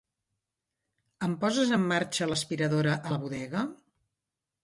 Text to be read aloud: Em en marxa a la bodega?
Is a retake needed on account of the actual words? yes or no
yes